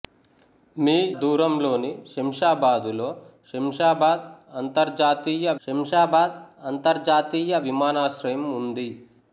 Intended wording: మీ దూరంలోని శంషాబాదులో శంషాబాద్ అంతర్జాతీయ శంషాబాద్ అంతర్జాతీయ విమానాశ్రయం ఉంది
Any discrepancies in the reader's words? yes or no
no